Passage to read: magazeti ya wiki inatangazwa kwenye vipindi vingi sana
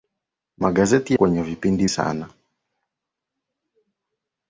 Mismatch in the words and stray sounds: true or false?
true